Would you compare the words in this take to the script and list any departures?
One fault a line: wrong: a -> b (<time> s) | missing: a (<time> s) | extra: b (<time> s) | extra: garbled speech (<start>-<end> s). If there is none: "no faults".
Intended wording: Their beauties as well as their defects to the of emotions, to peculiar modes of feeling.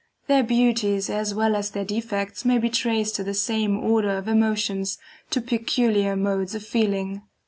extra: may be traced (2.4 s)
extra: same order (3.4 s)